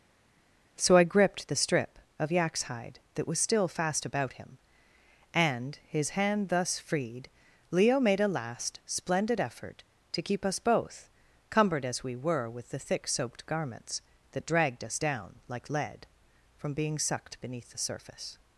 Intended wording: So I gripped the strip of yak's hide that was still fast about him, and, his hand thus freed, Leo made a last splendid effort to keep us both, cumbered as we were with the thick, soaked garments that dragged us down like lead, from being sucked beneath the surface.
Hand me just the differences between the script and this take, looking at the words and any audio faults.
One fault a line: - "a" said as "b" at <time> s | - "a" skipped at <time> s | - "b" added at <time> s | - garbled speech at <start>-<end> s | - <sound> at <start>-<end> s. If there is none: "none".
none